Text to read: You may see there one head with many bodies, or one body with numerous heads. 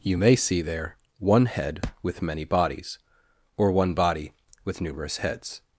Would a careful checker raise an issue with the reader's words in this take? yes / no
no